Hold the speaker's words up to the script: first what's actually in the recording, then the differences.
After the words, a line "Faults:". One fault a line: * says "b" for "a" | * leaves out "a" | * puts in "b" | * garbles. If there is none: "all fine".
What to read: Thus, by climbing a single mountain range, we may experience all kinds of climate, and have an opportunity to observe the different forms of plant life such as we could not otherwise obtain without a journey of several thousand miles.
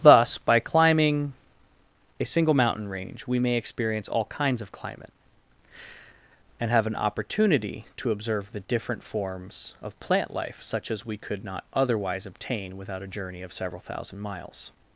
Thus, by climbing a single mountain range, we may experience all kinds of climate, and have an opportunity to observe the different forms of plant life such as we could not otherwise obtain without a journey of several thousand miles.
Faults:
all fine